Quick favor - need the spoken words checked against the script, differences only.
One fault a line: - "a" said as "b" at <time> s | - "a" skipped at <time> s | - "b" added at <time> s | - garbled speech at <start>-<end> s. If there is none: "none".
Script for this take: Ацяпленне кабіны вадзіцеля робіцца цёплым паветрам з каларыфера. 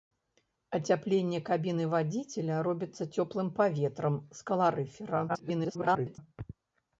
- garbled speech at 5.3-6.2 s